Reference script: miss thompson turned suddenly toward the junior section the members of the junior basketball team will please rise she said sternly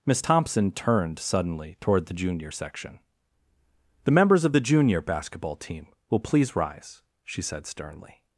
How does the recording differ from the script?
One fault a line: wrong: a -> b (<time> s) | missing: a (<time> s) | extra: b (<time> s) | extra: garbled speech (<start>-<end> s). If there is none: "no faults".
no faults